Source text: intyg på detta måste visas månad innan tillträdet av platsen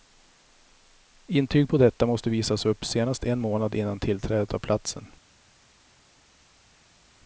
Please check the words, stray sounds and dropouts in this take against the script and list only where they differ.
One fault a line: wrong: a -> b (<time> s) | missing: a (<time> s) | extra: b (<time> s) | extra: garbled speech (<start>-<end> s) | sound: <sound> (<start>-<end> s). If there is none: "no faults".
extra: upp senast en (2.6 s)